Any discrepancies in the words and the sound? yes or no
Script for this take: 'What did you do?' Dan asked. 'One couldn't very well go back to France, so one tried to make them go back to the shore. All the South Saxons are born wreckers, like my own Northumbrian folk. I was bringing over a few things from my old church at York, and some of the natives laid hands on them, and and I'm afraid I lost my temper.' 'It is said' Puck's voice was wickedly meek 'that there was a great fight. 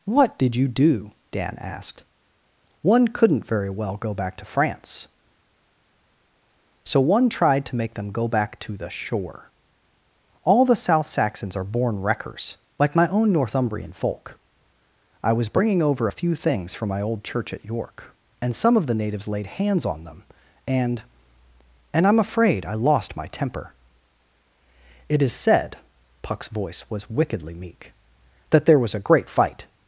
no